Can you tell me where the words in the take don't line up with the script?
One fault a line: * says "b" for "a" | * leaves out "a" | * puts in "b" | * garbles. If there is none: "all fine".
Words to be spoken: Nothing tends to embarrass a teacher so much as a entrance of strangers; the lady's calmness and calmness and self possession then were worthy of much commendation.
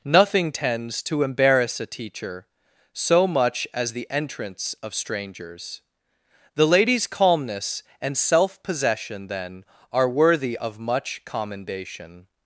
* says "the" for "a"
* leaves out "calmness and"
* says "are" for "were"